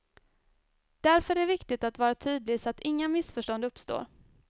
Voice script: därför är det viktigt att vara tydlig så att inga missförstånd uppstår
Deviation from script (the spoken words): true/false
false